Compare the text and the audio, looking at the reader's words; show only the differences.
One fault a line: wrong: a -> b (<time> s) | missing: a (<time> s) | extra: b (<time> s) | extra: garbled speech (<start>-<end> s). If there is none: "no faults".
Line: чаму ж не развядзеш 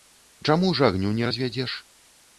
extra: агню (0.9 s)